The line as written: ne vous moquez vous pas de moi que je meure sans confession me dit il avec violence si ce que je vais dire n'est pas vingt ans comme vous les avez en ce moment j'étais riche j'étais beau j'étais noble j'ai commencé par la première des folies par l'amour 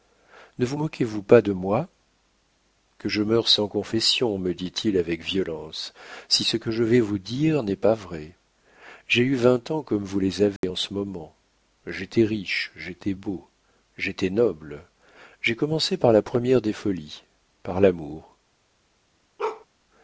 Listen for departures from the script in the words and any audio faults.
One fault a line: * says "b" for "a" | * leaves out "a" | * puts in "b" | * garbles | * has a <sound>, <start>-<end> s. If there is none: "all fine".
* puts in "vous"
* puts in "vrai j'ai eu"
* has a dropout, 10.6-10.6 s
* has a bark, 19.4-19.7 s